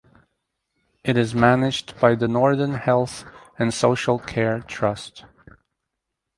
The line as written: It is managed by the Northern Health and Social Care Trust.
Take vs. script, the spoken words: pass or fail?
pass